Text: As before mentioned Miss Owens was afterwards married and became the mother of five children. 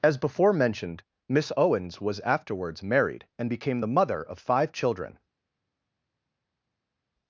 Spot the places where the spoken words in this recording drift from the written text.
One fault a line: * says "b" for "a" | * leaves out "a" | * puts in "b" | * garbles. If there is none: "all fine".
all fine